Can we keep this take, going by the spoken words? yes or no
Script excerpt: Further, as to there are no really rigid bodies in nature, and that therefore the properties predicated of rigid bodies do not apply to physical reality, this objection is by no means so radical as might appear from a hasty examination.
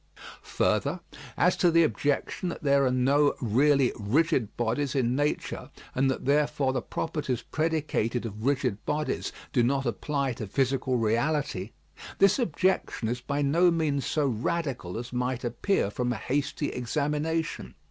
no